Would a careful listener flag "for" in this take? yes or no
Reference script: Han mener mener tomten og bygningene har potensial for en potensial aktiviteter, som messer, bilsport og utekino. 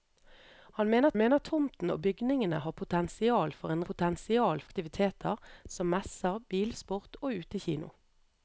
no